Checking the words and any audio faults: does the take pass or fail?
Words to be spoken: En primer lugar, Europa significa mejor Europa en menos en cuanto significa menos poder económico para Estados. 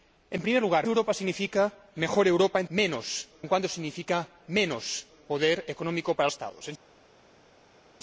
pass